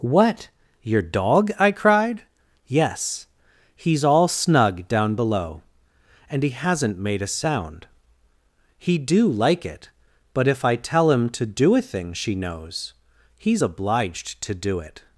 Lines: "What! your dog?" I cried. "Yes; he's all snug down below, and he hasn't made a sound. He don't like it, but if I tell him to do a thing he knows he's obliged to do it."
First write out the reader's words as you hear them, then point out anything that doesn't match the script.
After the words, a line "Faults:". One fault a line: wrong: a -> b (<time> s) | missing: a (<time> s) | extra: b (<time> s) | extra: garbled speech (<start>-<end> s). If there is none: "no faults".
"What! your dog?" I cried. "Yes; he's all snug down below, and he hasn't made a sound. He do like it, but if I tell him to do a thing she knows he's obliged to do it."
Faults:
wrong: don't -> do (9.0 s)
wrong: he -> she (12.1 s)